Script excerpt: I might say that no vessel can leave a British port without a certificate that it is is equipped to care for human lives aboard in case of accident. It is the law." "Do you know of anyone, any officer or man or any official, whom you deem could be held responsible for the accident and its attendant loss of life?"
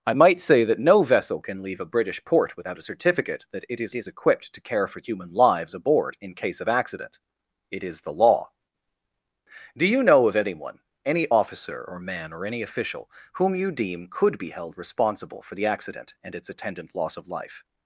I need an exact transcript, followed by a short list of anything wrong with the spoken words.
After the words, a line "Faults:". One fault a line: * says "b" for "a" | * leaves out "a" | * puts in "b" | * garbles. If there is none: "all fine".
I might say that no vessel can leave a British port without a certificate that it is is equipped to care for human lives aboard in case of accident. It is the law." "Do you know of anyone, any officer or man or any official, whom you deem could be held responsible for the accident and its attendant loss of life?"
Faults:
all fine